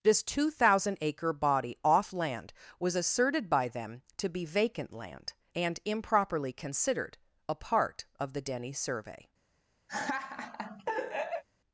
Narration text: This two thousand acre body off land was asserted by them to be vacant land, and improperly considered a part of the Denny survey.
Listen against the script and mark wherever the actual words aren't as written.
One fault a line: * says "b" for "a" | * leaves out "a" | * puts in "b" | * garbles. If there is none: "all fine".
all fine